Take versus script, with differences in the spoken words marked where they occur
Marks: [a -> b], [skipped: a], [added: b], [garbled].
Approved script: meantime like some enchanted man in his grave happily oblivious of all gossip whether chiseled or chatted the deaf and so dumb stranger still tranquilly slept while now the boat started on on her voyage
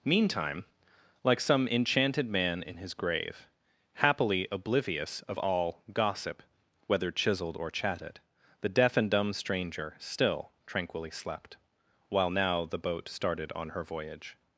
meantime like some enchanted man in his grave happily oblivious of all gossip whether chiseled or chatted the deaf and [skipped: so] dumb stranger still tranquilly slept while now the boat started on [skipped: on] her voyage